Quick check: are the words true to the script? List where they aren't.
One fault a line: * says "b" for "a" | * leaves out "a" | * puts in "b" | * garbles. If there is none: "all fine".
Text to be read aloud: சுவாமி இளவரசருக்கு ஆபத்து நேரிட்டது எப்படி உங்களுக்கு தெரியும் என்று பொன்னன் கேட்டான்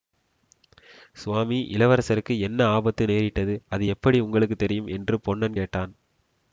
* puts in "என்ன"
* puts in "அது"